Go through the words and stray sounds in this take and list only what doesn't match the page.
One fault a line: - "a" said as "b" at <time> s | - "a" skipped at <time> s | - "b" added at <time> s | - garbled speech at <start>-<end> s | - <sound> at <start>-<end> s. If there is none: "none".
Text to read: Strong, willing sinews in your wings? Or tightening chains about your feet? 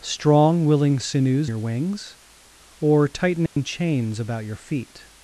- "in" skipped at 1.5 s
- dropout at 3.5-3.6 s